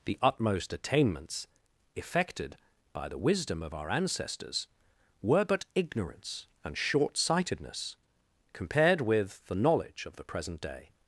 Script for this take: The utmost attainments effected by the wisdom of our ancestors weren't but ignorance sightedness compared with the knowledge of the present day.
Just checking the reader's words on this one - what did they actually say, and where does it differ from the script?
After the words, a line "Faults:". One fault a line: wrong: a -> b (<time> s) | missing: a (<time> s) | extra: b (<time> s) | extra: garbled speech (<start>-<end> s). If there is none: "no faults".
The utmost attainments effected by the wisdom of our ancestors were but ignorance and short sightedness compared with the knowledge of the present day.
Faults:
wrong: weren't -> were (5.2 s)
extra: and short (6.6 s)